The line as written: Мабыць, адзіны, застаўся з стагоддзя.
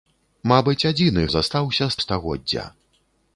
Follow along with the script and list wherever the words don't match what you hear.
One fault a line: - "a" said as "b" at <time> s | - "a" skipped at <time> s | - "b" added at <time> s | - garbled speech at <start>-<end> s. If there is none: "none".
none